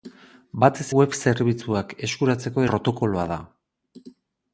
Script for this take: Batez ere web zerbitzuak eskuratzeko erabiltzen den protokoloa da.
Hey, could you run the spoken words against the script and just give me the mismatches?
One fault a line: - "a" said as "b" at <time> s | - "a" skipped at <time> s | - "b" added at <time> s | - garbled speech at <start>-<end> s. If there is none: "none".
- "ere" skipped at 0.8 s
- "erabiltzen den" skipped at 2.7 s